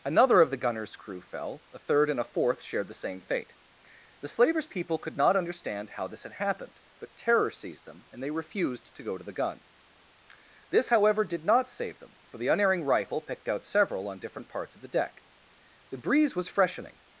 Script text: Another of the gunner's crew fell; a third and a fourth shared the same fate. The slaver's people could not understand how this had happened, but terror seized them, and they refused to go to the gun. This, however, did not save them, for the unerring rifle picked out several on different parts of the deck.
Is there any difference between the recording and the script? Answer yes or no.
yes